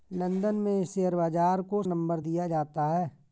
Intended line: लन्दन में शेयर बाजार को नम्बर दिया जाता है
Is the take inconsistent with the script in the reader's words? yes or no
no